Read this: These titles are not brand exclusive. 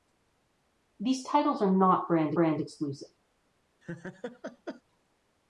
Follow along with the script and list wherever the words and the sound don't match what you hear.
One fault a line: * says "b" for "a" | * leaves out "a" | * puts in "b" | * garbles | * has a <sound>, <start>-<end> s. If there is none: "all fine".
* puts in "brand"
* has a laugh, 3.8-4.8 s